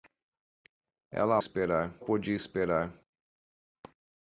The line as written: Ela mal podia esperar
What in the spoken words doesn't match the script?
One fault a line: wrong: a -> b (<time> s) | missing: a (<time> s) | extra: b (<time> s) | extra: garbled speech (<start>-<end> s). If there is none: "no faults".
wrong: mal -> esperar (1.4 s)